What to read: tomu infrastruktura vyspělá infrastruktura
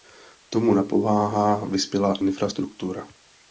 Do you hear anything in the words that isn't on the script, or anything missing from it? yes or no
yes